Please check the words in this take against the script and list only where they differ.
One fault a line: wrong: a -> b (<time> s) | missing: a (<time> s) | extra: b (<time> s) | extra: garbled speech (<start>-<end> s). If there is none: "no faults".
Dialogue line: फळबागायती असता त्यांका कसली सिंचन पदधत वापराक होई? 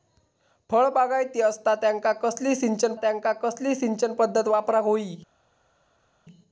extra: त्यांका कसली सिंचन (3.0 s)